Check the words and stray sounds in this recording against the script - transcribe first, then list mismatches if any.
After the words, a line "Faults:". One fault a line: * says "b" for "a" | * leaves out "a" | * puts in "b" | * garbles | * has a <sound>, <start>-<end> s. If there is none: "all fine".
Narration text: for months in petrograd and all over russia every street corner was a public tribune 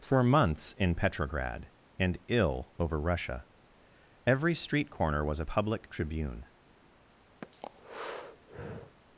for months in petrograd and ill over russia every street corner was a public tribune
Faults:
* says "ill" for "all"
* has a breath, 7.4-9.0 s